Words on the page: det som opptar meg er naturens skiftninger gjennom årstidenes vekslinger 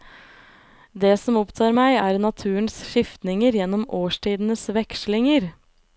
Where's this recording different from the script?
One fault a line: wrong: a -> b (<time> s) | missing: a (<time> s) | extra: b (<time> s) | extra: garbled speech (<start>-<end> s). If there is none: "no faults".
no faults